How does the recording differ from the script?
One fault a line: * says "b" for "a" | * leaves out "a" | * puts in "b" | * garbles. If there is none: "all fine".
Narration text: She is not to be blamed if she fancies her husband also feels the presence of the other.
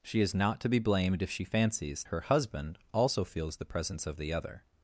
all fine